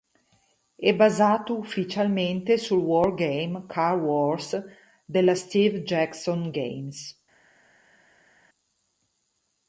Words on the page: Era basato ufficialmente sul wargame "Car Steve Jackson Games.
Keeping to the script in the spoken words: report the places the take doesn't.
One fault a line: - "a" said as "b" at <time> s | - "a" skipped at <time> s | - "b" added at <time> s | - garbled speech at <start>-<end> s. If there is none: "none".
- "Era" said as "È" at 0.8 s
- "Wars della" added at 4.0 s